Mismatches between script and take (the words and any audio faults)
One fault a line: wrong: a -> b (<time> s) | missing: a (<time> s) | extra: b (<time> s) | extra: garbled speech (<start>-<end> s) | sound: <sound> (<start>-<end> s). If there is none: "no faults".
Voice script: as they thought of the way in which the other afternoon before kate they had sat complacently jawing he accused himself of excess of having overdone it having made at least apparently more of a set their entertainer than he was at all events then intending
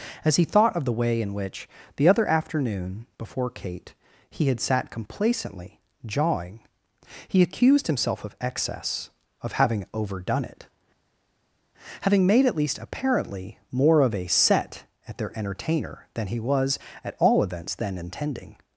wrong: they -> he (0.3 s)
wrong: they -> he (4.3 s)
extra: at (15.1 s)